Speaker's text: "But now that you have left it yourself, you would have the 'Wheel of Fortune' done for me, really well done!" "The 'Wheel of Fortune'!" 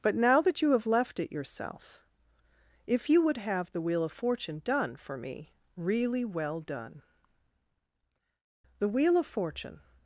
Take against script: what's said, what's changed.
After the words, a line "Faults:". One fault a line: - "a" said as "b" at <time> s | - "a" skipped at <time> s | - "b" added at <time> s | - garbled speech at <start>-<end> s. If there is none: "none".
"But now that you have left it yourself, if you would have the 'Wheel of Fortune' done for me, really well done!" "The 'Wheel of Fortune'!"
Faults:
- "if" added at 2.9 s